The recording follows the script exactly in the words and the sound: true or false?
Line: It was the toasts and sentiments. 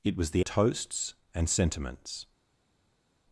true